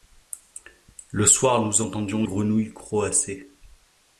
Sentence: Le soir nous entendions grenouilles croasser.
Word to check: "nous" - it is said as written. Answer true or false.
true